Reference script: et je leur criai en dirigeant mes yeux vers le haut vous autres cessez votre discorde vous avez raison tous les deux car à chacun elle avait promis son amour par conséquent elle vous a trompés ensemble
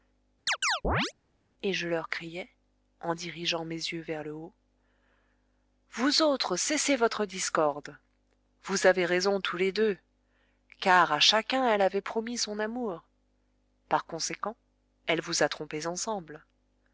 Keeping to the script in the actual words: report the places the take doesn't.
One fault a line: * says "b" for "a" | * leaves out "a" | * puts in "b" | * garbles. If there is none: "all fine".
all fine